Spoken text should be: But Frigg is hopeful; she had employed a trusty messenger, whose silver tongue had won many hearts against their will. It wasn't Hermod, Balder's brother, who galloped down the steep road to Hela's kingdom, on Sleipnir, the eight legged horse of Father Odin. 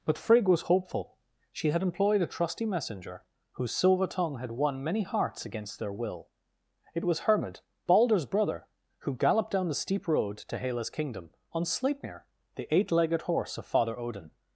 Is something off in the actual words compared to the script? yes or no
yes